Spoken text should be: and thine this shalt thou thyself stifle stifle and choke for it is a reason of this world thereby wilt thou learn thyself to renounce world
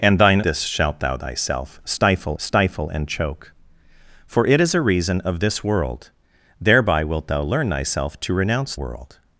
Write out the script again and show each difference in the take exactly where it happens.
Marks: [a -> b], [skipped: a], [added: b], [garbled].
and thine this shalt thou thyself stifle stifle and choke for it is a reason of this world thereby wilt thou learn thyself to renounce world